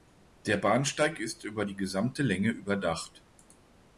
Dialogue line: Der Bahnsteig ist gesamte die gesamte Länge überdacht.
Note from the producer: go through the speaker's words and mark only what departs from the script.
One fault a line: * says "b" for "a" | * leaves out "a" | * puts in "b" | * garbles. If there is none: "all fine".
* says "über" for "gesamte"